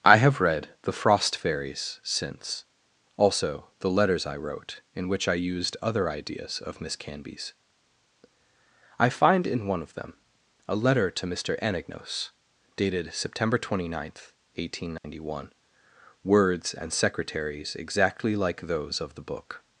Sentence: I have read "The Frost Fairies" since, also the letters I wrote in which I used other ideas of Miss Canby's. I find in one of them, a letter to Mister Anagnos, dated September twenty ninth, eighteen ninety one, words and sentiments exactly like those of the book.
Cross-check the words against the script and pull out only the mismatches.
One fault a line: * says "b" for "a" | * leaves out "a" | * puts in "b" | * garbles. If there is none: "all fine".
* says "secretaries" for "sentiments"